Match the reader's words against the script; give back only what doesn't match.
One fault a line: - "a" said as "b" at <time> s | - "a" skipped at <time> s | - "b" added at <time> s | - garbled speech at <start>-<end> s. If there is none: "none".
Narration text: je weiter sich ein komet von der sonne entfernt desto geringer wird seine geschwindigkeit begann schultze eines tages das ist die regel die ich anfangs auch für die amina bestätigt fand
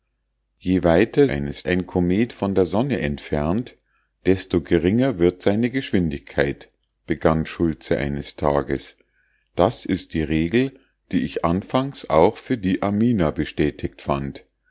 - "sich" said as "eines" at 1.3 s